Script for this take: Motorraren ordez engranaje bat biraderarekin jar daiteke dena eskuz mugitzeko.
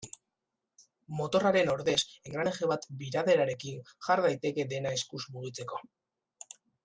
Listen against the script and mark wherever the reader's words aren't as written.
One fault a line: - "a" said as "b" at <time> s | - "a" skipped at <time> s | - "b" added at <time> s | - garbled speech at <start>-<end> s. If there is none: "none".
none